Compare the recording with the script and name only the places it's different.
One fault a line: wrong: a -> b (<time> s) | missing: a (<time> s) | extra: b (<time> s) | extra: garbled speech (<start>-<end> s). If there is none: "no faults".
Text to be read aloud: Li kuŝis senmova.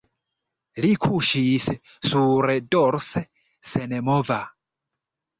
extra: surdorse (2.1 s)